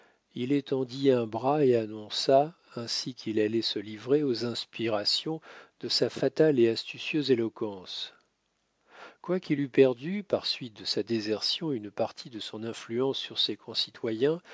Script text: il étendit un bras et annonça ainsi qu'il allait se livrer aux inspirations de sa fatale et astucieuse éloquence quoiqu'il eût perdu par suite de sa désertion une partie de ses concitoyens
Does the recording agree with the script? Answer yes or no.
no